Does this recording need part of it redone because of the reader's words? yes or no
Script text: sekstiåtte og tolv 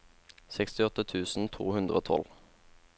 yes